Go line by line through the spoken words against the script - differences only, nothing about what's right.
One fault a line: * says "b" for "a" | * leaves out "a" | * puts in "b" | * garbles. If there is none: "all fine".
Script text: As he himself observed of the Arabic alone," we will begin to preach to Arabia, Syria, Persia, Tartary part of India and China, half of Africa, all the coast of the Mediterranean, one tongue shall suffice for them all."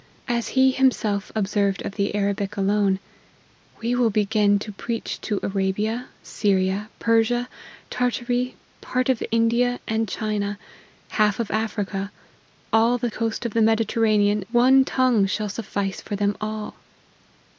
all fine